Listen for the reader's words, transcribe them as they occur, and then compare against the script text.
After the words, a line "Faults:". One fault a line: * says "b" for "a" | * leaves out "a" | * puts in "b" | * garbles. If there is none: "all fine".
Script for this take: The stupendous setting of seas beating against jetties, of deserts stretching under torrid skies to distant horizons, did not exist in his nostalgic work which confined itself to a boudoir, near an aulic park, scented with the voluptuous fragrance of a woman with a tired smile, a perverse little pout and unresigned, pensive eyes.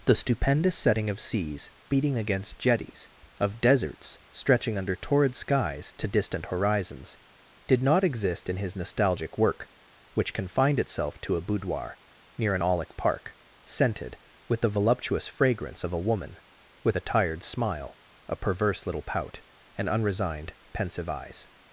The stupendous setting of seas beating against jetties, of deserts stretching under torrid skies to distant horizons, did not exist in his nostalgic work which confined itself to a boudoir, near an aulic park, scented with the voluptuous fragrance of a woman with a tired smile, a perverse little pout and unresigned, pensive eyes.
Faults:
all fine